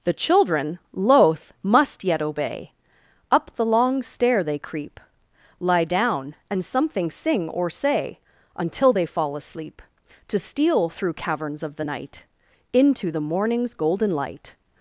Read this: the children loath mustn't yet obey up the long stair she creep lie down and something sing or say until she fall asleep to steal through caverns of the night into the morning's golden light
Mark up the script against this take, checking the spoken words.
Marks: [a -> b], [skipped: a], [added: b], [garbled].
the children loath [mustn't -> must] yet obey up the long stair [she -> they] creep lie down and something sing or say until [she -> they] fall asleep to steal through caverns of the night into the morning's golden light